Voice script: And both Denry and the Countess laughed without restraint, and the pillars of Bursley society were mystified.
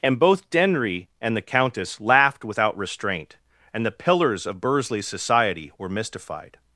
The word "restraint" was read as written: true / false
true